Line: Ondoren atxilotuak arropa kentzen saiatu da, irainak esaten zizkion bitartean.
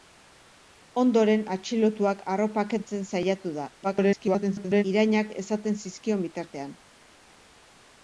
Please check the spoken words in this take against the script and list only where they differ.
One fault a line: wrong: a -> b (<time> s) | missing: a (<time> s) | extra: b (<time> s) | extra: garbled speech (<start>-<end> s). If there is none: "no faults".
extra: garbled speech (3.8-4.8 s)